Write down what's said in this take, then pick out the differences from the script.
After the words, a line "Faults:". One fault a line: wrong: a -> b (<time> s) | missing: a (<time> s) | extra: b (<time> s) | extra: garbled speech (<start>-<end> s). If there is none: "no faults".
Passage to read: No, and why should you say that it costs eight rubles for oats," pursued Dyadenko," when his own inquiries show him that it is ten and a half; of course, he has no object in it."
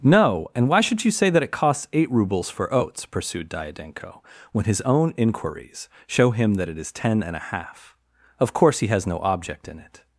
No, and why should you say that it costs eight rubles for oats," pursued Dyadenko," when his own inquiries show him that it is ten and a half; of course, he has no object in it."
Faults:
no faults